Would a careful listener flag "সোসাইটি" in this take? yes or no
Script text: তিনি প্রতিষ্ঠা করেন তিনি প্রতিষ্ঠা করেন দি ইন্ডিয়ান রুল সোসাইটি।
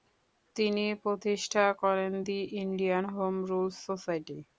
no